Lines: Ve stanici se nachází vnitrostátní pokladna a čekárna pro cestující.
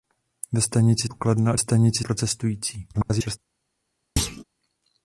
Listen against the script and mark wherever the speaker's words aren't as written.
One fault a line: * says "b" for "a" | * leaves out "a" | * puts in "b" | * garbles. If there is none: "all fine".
* leaves out "se nachází vnitrostátní"
* says "stanici" for "čekárna"
* garbles